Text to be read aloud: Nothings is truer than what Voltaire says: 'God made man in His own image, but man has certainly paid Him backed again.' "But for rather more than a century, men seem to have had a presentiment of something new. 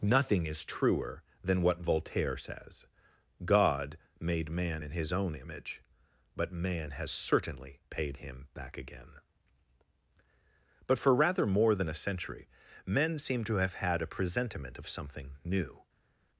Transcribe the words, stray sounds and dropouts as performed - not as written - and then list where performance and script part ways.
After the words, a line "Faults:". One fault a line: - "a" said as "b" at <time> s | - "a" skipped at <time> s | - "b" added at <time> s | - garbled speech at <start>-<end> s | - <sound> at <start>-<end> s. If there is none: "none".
Nothing is truer than what Voltaire says: 'God made man in His own image, but man has certainly paid Him back again.' "But for rather more than a century, men seem to have had a presentiment of something new.
Faults:
- "Nothings" said as "Nothing" at 0.0 s
- "backed" said as "back" at 8.5 s